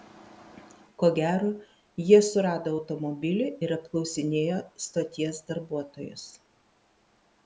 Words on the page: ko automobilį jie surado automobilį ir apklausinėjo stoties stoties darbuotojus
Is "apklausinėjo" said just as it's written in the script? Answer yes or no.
yes